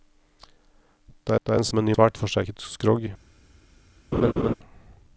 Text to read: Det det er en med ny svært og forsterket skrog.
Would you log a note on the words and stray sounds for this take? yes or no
yes